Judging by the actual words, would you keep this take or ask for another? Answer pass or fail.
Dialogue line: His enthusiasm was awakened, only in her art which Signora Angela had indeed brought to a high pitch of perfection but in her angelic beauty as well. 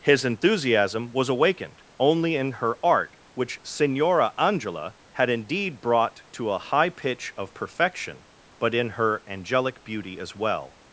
pass